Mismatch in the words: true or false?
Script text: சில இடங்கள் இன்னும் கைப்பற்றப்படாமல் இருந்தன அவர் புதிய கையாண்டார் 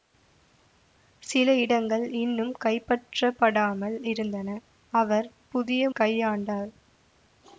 false